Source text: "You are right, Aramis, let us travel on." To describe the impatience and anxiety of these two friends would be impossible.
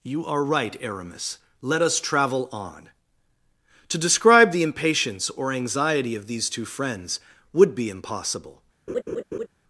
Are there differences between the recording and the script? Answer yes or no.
yes